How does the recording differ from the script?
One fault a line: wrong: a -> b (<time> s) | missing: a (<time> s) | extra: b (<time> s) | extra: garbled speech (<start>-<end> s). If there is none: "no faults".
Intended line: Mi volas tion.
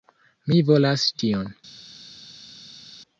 no faults